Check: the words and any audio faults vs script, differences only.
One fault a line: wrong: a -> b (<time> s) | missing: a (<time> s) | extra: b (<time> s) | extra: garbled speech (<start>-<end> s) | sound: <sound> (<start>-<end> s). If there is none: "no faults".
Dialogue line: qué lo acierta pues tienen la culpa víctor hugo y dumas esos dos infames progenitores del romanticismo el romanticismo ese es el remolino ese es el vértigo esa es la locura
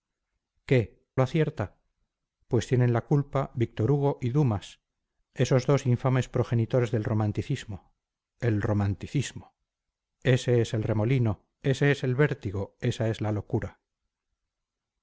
no faults